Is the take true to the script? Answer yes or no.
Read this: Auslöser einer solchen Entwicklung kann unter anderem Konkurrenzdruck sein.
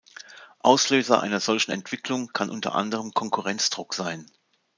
yes